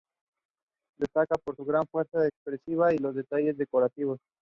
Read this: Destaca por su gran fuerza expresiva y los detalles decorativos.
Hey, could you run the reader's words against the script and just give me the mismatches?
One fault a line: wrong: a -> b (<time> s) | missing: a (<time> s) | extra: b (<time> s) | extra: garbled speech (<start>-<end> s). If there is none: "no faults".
no faults